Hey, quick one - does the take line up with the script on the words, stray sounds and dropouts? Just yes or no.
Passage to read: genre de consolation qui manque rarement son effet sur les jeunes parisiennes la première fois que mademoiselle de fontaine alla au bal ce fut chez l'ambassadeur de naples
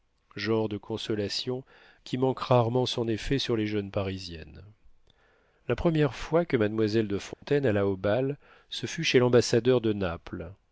no